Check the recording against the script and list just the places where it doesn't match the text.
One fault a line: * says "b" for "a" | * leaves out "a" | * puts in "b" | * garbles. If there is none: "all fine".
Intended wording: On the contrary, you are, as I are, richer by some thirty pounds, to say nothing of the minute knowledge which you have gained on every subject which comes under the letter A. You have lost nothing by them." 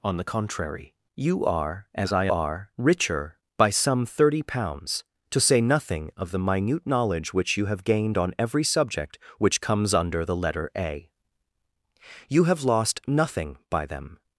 all fine